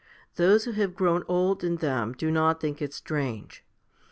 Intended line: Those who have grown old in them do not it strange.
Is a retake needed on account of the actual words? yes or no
yes